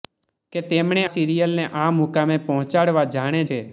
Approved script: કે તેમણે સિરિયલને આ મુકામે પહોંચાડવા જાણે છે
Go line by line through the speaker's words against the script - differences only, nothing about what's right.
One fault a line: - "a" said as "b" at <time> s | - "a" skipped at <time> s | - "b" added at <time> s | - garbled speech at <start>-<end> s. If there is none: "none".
none